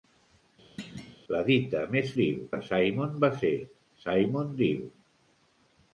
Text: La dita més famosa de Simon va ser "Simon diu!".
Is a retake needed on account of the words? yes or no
yes